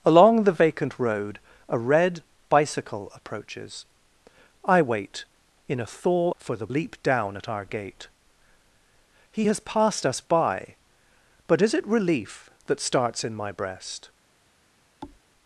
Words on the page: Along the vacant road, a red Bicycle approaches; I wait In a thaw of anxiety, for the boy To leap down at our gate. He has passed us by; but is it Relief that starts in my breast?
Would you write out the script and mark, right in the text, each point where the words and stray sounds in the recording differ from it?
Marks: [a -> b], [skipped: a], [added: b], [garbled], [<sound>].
Along the vacant road, a red Bicycle approaches; I wait In a thaw [skipped: of anxiety,] for the [skipped: boy To] leap down at our gate. He has passed us by; but is it Relief that starts in my breast? [thud]